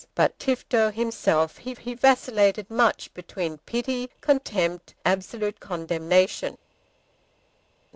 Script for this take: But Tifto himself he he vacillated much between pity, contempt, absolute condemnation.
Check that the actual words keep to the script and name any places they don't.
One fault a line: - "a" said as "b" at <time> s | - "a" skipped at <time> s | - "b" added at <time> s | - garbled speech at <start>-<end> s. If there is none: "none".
none